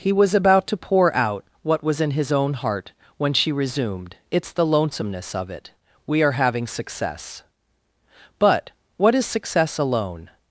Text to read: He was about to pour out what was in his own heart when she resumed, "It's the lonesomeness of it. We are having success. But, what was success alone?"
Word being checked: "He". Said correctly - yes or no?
yes